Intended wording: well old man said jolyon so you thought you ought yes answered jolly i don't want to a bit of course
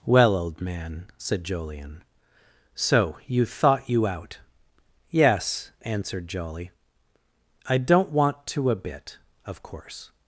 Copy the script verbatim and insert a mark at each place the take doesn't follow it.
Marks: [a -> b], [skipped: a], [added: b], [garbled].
well old man said jolyon so you thought you [ought -> out] yes answered jolly i don't want to a bit of course